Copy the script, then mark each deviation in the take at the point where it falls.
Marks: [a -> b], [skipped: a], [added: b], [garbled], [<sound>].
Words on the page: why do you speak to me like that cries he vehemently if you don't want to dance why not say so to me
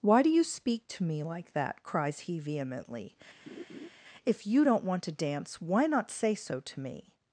why do you speak to me like that cries he vehemently [laugh] if you don't want to dance why not say so to me